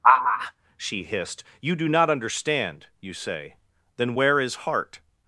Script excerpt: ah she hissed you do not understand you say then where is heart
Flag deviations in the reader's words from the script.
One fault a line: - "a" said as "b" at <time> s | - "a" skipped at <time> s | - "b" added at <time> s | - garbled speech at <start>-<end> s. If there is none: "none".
none